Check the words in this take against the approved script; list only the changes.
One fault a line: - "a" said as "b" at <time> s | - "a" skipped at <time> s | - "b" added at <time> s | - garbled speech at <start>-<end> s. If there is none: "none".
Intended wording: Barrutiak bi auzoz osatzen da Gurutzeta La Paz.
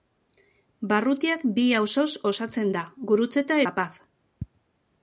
none